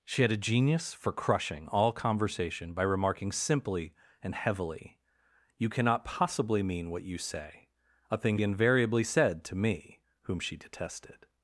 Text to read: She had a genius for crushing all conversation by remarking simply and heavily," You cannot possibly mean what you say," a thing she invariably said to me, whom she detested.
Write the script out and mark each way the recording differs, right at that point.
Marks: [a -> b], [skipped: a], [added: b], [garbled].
She had a genius for crushing all conversation by remarking simply and heavily," You cannot possibly mean what you say," a thing [skipped: she] invariably said to me, whom she detested.